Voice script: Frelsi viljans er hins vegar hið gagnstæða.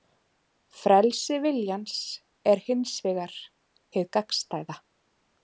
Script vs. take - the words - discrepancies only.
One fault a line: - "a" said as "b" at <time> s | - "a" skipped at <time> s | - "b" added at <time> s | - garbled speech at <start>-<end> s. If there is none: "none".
none